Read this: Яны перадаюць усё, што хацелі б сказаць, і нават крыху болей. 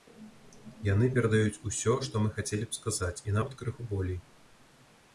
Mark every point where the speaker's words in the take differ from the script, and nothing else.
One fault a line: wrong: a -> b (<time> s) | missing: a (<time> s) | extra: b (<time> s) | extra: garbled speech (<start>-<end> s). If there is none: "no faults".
extra: мы (2.2 s)